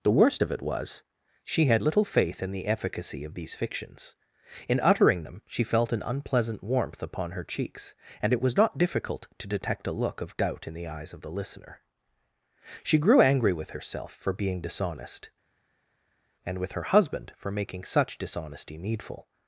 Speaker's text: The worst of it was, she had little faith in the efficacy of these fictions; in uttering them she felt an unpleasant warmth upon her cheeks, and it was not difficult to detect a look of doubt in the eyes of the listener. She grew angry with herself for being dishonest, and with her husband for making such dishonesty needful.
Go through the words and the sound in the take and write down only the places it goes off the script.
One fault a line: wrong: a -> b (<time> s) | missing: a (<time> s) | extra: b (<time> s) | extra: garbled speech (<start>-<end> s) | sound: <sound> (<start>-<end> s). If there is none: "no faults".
no faults